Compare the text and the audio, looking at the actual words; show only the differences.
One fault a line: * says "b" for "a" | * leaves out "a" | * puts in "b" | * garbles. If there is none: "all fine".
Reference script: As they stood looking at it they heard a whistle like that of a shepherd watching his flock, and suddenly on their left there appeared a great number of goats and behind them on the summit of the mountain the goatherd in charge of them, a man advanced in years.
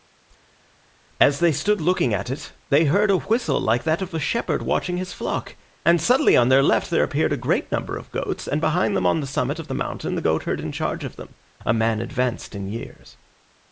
all fine